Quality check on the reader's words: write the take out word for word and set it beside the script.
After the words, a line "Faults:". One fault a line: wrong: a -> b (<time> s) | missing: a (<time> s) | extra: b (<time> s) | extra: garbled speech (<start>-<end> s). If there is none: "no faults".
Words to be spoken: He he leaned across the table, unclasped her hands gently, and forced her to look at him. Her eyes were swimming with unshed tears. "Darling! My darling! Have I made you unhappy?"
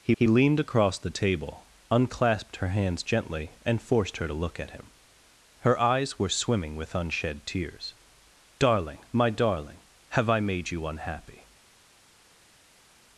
He he leaned across the table, unclasped her hands gently, and forced her to look at him. Her eyes were swimming with unshed tears. "Darling! My darling! Have I made you unhappy?"
Faults:
no faults